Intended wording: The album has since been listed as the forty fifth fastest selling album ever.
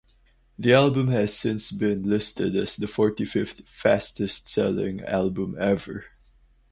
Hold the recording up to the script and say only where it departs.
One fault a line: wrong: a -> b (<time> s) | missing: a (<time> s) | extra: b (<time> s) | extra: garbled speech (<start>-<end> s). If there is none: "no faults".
no faults